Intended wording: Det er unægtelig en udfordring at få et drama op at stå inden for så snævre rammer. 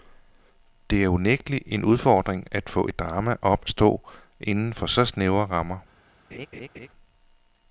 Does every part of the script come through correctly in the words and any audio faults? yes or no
no